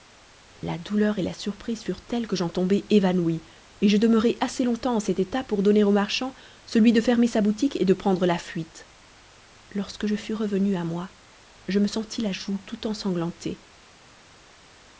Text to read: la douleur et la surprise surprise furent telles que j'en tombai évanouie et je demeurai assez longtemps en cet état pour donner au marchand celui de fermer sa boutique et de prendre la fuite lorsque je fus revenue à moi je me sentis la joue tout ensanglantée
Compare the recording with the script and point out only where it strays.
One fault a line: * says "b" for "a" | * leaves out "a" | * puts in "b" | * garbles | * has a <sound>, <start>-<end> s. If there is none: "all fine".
* leaves out "surprise"